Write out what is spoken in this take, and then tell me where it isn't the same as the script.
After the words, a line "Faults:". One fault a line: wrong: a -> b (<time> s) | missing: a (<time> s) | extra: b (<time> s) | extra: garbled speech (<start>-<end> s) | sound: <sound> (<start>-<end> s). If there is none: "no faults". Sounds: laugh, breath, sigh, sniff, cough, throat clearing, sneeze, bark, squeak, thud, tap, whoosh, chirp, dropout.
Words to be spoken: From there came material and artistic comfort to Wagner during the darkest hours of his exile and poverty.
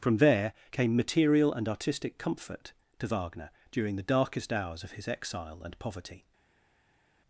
From there came material and artistic comfort to Wagner during the darkest hours of his exile and poverty.
Faults:
no faults